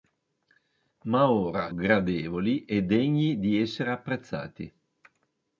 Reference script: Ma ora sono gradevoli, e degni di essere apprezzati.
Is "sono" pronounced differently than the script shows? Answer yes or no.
yes